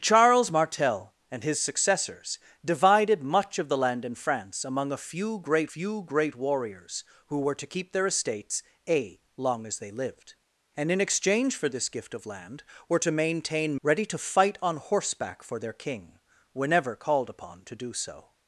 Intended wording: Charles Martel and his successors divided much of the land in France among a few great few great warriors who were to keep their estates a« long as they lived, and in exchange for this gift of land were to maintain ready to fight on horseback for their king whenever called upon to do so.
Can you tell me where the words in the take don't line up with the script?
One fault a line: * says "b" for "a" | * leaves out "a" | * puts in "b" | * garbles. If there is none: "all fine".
all fine